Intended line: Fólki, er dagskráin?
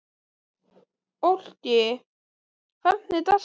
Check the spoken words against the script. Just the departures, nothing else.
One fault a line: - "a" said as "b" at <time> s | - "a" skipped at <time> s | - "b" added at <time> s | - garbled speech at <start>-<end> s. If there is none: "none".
- "hvernig" added at 2.8 s